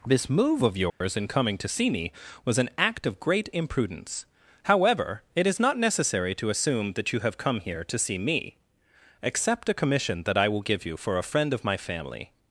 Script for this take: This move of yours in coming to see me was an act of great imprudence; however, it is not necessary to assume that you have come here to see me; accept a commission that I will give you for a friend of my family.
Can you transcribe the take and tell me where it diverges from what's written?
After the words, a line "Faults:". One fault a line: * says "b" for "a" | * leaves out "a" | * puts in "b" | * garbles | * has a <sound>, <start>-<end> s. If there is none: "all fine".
This move of yours in coming to see me was an act of great imprudence; however, it is not necessary to assume that you have come here to see me; accept a commission that I will give you for a friend of my family.
Faults:
* has a dropout, 0.9-1.0 s